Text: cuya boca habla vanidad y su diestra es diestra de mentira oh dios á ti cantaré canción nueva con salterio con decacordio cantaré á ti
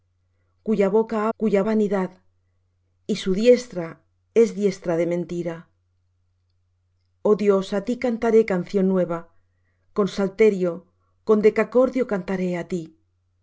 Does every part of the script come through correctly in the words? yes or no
no